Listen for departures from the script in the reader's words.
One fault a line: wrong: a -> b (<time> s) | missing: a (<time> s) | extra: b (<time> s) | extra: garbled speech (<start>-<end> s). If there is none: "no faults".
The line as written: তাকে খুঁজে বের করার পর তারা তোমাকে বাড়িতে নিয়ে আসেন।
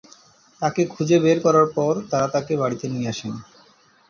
wrong: তোমাকে -> তাকে (2.3 s)